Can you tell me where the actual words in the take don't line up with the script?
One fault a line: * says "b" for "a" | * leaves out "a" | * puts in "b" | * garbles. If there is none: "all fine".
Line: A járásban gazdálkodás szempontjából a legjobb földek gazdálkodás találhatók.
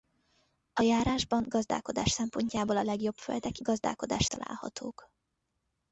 all fine